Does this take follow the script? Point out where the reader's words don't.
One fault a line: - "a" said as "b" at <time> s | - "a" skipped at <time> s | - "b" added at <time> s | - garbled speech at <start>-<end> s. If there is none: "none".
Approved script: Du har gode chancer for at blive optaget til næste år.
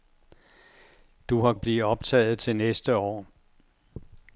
- "gode chancer for" skipped at 1.5 s